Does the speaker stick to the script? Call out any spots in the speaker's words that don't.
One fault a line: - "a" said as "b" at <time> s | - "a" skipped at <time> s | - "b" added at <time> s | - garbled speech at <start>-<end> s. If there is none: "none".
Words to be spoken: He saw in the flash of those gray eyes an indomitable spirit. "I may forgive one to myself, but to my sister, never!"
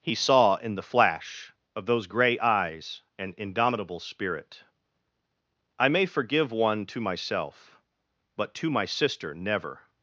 none